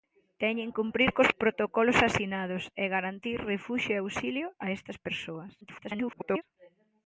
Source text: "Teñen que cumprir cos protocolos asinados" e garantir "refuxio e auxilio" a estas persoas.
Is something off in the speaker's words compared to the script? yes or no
yes